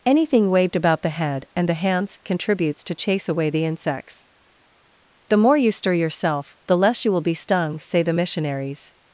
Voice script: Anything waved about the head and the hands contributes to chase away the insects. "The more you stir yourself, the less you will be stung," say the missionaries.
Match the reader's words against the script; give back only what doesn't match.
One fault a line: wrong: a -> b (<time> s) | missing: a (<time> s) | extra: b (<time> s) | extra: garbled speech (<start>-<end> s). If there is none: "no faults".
no faults